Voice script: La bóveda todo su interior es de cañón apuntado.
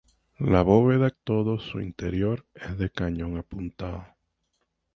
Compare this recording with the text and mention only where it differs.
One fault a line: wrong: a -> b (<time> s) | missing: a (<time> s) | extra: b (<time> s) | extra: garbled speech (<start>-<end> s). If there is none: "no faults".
no faults